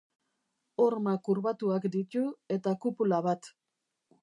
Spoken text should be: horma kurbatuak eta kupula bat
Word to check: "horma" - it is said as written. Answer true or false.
true